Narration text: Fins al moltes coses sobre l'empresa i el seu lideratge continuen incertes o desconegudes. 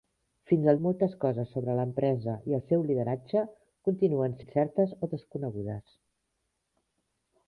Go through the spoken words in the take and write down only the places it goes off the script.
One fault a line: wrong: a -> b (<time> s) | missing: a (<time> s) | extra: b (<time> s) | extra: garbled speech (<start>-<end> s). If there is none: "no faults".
no faults